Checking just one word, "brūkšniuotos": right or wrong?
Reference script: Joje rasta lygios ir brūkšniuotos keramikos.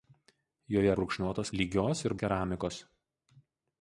wrong